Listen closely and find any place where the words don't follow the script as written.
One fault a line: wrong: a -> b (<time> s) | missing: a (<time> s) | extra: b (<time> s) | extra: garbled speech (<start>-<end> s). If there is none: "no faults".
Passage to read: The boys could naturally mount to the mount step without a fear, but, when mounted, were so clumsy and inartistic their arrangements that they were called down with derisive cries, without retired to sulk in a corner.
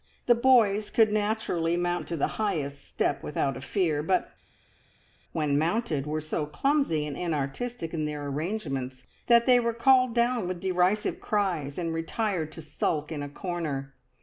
wrong: mount -> highest (2.4 s)
extra: in (7.9 s)
wrong: without -> and (11.8 s)